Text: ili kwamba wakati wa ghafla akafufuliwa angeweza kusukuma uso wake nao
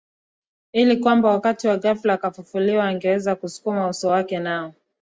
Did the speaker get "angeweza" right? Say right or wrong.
right